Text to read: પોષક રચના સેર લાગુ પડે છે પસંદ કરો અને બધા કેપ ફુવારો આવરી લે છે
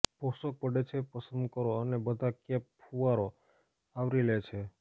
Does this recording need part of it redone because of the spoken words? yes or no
yes